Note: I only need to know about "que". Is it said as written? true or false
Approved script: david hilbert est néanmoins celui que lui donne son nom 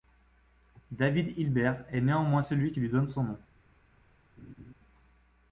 false